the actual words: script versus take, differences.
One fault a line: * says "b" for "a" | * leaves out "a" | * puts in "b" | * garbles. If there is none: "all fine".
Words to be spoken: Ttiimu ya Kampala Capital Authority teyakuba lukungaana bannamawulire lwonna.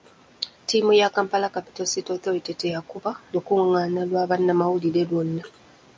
* puts in "City"
* puts in "lwa"